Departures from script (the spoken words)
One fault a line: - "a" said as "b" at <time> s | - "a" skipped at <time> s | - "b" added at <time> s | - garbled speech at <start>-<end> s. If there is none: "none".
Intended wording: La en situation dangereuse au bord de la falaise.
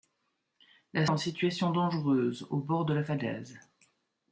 none